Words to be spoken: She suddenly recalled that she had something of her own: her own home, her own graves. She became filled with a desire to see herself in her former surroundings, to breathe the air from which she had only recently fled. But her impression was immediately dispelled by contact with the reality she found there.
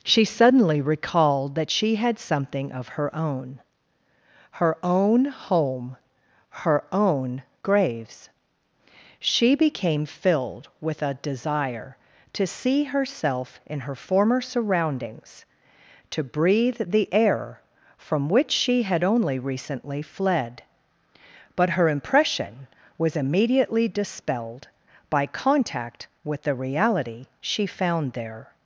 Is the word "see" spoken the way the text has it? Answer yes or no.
yes